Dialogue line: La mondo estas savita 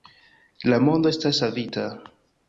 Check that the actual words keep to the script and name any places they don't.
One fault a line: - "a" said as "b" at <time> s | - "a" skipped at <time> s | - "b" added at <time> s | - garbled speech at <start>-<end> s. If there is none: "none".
none